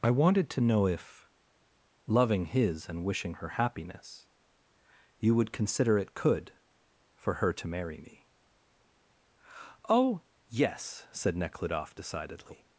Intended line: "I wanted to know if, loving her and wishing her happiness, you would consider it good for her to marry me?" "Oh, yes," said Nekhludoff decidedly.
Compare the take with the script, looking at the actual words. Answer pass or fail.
fail